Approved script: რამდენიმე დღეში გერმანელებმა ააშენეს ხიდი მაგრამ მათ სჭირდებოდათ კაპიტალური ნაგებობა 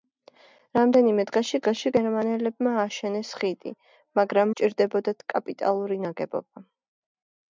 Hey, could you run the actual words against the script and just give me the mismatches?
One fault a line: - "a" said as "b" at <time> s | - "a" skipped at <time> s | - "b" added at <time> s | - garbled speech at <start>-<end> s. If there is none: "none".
- "დღეში" added at 1.6 s
- "მათ" skipped at 4.5 s